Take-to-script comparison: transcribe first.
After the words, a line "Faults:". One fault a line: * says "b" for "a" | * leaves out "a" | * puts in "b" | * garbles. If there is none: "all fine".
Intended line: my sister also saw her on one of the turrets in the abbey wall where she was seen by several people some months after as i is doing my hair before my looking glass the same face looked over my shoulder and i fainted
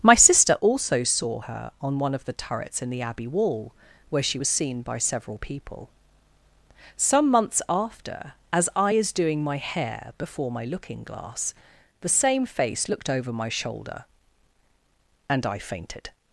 my sister also saw her on one of the turrets in the abbey wall where she was seen by several people some months after as i is doing my hair before my looking glass the same face looked over my shoulder and i fainted
Faults:
all fine